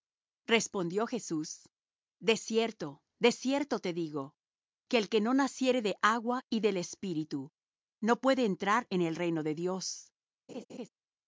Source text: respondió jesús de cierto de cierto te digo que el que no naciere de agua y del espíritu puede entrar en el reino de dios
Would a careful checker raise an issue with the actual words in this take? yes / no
yes